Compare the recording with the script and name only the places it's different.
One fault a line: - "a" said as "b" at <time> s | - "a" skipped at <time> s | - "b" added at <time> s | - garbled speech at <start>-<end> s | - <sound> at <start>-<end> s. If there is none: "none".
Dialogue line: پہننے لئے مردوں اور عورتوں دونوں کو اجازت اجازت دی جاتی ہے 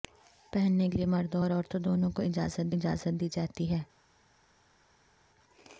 none